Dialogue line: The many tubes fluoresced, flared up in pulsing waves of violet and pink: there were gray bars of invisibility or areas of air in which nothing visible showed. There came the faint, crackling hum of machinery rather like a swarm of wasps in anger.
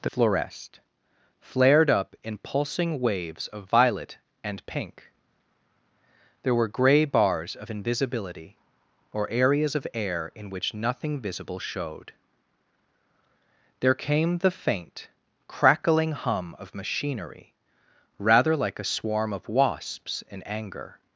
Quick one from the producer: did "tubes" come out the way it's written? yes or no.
no